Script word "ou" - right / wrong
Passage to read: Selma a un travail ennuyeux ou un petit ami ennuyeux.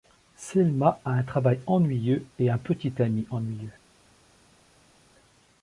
wrong